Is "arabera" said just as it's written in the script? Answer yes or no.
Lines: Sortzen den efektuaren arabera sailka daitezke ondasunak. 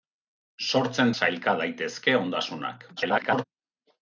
no